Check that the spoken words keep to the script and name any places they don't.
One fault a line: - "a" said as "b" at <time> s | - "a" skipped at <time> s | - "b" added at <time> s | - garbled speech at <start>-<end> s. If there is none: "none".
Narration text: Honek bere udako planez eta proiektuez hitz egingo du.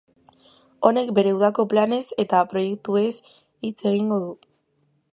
none